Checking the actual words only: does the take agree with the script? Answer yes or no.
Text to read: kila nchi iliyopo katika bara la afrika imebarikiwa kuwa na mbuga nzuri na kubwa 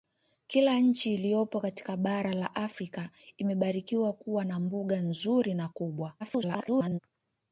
no